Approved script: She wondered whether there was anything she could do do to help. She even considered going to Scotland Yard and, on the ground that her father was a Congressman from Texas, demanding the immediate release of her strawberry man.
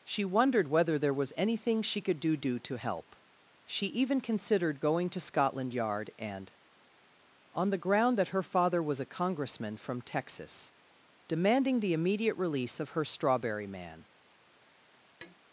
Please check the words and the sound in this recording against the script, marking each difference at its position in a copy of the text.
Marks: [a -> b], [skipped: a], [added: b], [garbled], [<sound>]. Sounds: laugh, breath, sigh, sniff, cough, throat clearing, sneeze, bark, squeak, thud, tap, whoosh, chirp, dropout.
She wondered whether there was anything she could do do to help. She even considered going to Scotland Yard and, on the ground that her father was a Congressman from Texas, demanding the immediate release of her strawberry man. [tap]